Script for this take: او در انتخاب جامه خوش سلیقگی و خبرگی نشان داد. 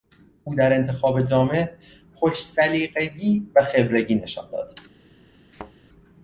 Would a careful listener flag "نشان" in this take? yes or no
no